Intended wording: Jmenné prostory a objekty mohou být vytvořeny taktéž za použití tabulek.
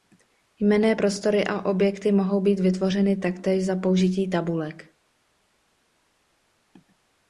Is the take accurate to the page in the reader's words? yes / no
yes